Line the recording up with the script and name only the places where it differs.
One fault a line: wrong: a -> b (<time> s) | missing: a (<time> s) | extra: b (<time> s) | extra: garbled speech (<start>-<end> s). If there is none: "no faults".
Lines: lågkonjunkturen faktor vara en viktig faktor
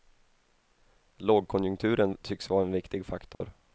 wrong: faktor -> tycks (2.2 s)